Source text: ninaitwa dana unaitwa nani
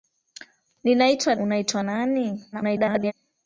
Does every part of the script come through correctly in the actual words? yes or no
no